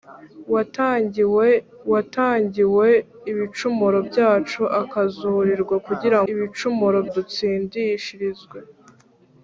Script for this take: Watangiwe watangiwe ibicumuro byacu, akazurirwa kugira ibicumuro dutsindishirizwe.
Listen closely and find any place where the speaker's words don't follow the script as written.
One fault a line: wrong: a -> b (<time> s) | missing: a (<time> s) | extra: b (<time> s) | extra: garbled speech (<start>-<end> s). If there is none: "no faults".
no faults